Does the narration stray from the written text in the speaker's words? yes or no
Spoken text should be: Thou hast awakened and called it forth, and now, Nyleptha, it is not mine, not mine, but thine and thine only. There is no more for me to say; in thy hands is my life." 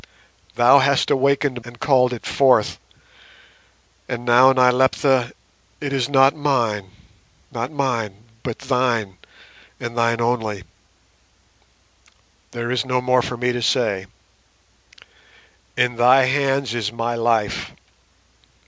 no